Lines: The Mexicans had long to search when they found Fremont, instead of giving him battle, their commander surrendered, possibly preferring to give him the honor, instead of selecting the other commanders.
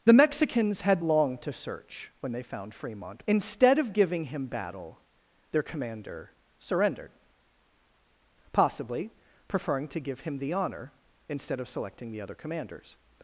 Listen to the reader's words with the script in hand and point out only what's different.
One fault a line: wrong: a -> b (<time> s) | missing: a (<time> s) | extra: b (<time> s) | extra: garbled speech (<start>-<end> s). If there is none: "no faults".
no faults